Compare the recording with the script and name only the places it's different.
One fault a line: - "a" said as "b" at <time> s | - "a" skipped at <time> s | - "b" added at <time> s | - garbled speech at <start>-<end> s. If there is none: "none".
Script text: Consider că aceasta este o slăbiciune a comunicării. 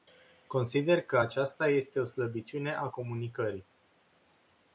none